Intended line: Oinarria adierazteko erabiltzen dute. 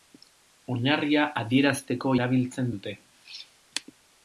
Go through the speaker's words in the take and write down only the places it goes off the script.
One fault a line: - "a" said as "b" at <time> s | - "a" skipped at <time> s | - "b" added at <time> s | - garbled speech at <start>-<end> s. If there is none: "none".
none